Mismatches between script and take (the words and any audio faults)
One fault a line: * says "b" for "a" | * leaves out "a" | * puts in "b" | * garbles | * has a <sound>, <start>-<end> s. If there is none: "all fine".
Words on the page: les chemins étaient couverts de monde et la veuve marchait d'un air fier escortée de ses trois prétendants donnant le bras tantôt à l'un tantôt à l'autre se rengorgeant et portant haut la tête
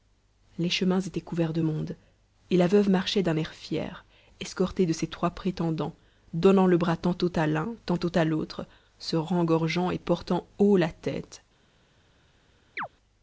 * has a chirp, 12.8-12.9 s